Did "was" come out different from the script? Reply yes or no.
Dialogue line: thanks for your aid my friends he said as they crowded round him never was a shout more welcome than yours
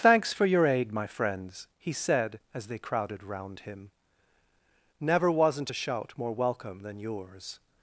yes